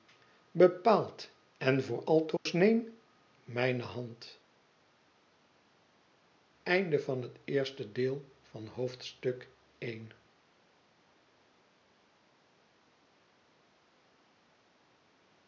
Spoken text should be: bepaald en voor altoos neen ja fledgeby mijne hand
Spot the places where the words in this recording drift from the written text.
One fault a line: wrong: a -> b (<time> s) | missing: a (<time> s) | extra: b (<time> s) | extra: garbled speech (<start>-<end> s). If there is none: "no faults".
missing: ja fledgeby (3.0 s)